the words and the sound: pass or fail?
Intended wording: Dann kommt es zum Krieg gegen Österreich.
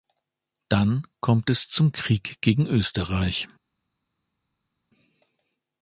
pass